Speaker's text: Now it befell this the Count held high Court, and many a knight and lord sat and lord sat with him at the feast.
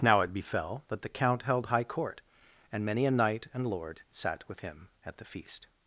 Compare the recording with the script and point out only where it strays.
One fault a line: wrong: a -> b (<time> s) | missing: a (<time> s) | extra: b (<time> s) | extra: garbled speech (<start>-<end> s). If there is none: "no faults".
wrong: this -> that (0.9 s)
missing: and lord sat (4.5 s)